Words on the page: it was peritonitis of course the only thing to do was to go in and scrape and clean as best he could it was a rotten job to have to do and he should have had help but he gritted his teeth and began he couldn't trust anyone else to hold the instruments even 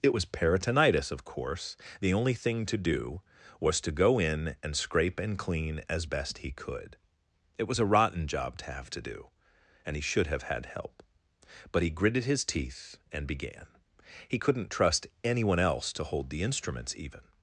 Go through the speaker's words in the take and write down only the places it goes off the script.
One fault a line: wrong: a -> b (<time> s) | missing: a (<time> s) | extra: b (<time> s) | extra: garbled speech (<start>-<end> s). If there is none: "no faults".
no faults